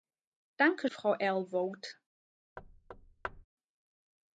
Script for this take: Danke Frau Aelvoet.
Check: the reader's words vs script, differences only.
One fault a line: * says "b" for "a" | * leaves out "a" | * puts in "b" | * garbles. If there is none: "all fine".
all fine